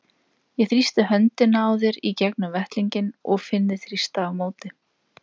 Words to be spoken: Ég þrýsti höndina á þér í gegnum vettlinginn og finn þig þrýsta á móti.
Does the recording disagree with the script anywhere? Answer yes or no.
no